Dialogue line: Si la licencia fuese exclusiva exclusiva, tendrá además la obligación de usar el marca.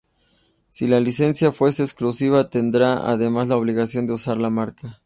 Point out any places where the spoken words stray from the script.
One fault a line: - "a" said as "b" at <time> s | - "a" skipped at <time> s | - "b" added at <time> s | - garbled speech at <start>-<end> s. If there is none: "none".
- "exclusiva" skipped at 2.5 s
- "el" said as "la" at 4.4 s